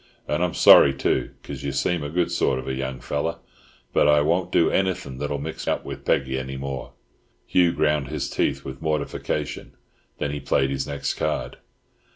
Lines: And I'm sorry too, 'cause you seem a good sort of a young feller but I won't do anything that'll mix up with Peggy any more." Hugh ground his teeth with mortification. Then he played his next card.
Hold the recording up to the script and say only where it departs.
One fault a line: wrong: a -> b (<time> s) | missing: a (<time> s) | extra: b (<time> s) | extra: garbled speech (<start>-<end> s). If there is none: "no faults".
no faults